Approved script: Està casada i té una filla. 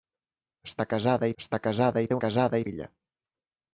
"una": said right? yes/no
no